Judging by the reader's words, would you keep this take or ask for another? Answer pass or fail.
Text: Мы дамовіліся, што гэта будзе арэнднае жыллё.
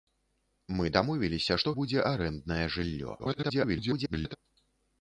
fail